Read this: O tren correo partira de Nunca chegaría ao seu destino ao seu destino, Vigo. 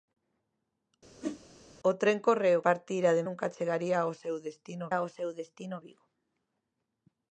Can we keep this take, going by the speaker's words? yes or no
yes